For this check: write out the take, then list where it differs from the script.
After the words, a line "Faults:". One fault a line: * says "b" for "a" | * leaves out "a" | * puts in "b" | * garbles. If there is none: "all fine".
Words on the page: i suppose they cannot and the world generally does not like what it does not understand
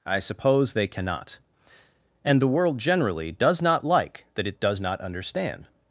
i suppose they cannot and the world generally does not like that it does not understand
Faults:
* says "that" for "what"